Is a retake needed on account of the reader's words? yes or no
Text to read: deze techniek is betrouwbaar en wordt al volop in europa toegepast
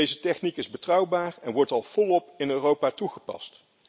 no